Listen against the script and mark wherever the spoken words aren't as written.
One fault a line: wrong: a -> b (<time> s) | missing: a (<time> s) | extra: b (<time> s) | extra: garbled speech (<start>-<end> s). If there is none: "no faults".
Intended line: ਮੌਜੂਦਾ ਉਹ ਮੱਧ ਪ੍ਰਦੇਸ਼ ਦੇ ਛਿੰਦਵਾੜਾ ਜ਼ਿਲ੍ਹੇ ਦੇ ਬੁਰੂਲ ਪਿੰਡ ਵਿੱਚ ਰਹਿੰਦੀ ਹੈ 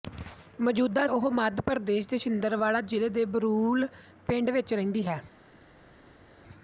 no faults